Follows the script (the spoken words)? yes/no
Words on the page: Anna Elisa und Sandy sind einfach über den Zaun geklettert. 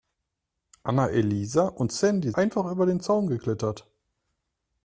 no